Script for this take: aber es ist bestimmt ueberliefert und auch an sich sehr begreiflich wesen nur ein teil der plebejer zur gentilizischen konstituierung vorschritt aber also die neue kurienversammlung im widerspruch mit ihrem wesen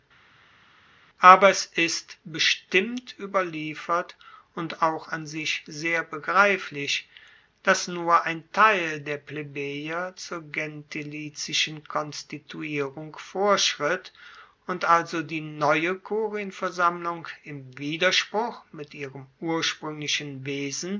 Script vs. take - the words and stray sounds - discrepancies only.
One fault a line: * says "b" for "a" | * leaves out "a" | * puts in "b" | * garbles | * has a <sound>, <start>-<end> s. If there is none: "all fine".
* says "dass" for "wesen"
* says "und" for "aber"
* puts in "urspruenglichen"